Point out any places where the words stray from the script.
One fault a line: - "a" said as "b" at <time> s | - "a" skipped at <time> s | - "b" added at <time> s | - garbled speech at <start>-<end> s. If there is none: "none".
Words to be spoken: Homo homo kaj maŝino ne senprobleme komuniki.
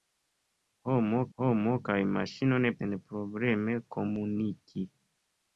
none